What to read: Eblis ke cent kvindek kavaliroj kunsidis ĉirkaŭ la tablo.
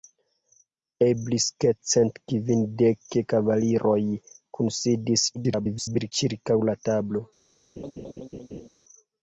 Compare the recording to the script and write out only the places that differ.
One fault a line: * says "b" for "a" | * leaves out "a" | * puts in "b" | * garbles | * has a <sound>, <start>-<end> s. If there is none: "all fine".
* garbles
* has a laugh, 7.8-8.7 s